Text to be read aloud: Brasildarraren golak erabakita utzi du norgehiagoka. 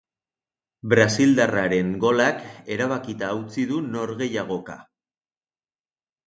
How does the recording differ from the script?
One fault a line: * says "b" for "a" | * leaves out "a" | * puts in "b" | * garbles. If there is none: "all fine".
all fine